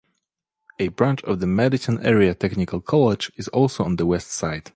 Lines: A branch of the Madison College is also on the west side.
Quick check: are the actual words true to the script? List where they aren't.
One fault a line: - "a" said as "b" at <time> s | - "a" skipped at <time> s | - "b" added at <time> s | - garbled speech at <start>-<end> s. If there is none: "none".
- "Area Technical" added at 2.0 s